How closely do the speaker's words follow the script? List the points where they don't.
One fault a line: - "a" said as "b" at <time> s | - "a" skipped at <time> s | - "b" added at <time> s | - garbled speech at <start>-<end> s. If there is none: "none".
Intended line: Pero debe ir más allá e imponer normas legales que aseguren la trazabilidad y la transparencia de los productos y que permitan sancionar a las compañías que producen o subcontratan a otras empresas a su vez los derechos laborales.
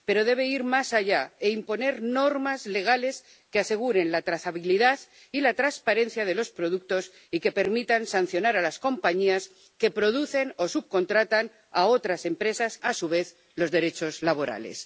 none